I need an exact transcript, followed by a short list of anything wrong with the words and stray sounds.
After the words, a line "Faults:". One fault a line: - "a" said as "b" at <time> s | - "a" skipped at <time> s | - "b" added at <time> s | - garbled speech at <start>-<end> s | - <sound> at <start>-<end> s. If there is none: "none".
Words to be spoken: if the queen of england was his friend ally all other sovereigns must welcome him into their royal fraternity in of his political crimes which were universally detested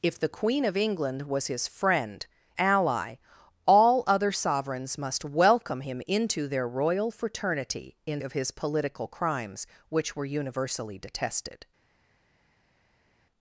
if the queen of england was his friend ally all other sovereigns must welcome him into their royal fraternity in of his political crimes which were universally detested
Faults:
none